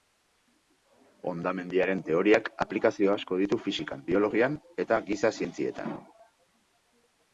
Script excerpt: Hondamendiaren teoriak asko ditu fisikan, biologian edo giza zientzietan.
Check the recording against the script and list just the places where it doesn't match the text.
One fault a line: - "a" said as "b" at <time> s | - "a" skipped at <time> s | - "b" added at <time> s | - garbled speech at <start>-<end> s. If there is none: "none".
- "aplikazio" added at 2.6 s
- "edo" said as "eta" at 4.9 s